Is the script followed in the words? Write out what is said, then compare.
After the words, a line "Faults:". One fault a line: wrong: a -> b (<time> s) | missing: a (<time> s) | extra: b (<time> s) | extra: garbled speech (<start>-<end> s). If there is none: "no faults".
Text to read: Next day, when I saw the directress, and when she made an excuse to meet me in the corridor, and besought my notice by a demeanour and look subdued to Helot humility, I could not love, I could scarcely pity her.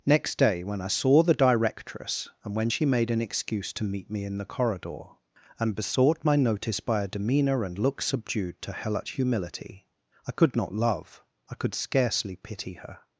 Next day, when I saw the directress, and when she made an excuse to meet me in the corridor, and besought my notice by a demeanour and look subdued to Helot humility, I could not love, I could scarcely pity her.
Faults:
no faults